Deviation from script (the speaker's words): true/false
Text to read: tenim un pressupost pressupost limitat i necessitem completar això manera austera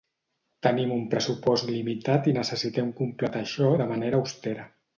true